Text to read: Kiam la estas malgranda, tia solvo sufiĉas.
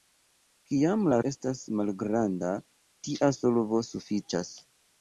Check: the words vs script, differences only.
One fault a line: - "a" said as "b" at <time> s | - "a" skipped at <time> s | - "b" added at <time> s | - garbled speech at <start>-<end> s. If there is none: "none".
none